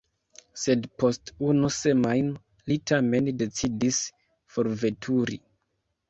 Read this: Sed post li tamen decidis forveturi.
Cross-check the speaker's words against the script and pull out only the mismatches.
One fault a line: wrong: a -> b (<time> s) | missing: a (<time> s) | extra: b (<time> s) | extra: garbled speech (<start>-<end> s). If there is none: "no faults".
extra: unu semajno (1.5 s)